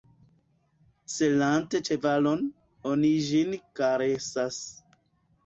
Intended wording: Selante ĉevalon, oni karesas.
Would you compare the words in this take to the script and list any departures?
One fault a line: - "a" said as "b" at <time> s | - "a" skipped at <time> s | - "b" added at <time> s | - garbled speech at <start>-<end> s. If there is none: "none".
- "ĝin" added at 3.3 s